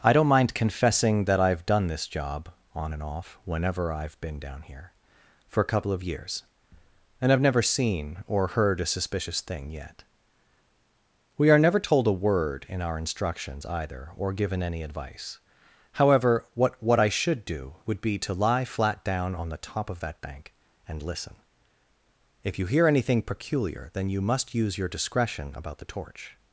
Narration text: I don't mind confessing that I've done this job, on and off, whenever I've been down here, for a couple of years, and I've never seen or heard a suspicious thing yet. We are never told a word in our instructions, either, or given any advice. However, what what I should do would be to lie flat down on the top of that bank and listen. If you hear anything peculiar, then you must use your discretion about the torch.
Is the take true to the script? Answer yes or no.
yes